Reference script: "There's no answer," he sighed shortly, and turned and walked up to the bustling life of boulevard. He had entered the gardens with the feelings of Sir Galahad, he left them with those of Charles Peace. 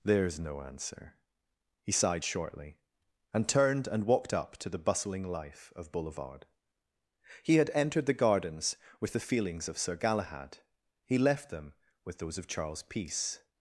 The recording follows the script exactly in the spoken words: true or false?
true